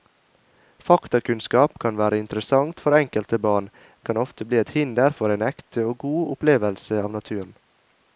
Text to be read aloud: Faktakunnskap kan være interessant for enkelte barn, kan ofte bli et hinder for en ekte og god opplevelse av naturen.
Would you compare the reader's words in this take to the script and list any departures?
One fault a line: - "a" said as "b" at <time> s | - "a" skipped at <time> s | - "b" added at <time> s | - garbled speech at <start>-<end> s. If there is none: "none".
none